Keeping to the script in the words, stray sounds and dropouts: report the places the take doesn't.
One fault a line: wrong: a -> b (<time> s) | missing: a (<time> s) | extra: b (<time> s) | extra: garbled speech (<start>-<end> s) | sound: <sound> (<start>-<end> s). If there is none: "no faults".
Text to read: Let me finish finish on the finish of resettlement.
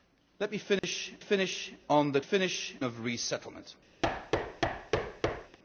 sound: dropout (0.8-0.8 s)
sound: thud (4.0-5.6 s)